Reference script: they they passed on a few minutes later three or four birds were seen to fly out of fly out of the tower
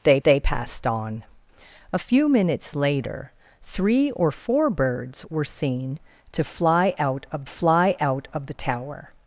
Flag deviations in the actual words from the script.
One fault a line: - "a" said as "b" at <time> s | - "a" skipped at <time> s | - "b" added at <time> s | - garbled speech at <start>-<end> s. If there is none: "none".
none